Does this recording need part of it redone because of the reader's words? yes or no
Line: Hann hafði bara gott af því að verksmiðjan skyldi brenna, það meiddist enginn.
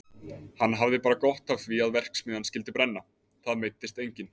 no